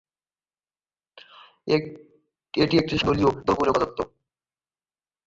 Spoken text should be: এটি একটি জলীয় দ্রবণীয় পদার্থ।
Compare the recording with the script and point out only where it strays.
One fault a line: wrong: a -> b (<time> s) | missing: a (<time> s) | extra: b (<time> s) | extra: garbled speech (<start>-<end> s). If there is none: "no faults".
no faults